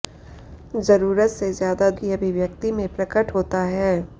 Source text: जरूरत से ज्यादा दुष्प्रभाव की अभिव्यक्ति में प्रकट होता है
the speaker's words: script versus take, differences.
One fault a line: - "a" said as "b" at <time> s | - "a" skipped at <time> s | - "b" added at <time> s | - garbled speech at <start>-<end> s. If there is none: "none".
- "दुष्प्रभाव" skipped at 1.9 s